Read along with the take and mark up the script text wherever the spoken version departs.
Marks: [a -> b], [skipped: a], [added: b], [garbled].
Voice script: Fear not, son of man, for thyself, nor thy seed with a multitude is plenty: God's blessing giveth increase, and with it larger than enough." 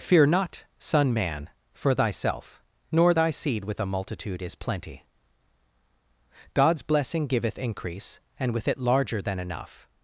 Fear not, son [skipped: of] man, for thyself, nor thy seed with a multitude is plenty: God's blessing giveth increase, and with it larger than enough."